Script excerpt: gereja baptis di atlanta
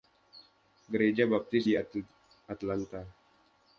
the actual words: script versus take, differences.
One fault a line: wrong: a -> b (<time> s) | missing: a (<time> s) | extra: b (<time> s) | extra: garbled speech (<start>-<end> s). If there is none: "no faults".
no faults